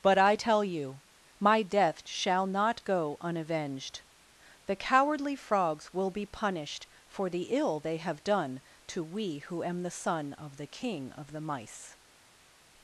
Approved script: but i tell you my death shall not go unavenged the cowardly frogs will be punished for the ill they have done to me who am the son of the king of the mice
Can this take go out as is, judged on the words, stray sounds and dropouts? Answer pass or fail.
fail